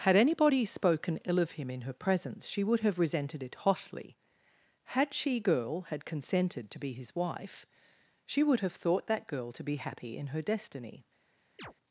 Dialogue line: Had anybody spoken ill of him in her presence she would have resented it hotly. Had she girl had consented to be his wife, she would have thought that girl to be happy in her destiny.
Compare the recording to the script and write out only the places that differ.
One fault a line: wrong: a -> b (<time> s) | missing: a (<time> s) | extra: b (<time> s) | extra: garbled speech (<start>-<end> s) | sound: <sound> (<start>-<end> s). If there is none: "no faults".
sound: chirp (11.6-11.7 s)